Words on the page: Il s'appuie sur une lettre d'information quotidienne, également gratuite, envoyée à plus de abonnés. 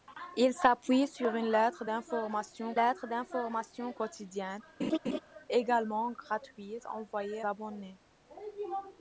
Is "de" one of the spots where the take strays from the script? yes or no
yes